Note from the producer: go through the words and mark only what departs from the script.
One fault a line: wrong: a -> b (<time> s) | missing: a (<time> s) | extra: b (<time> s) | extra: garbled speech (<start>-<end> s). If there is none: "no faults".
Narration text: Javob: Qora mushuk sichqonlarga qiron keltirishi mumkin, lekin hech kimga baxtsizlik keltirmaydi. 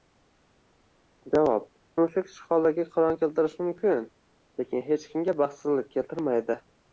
missing: Qora (1.7 s)